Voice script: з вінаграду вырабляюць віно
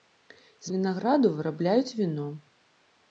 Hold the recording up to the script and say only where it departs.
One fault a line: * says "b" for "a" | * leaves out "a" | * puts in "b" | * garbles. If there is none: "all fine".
all fine